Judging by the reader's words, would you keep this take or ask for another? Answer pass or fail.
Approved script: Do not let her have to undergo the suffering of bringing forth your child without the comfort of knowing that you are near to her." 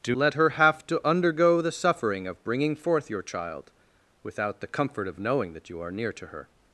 fail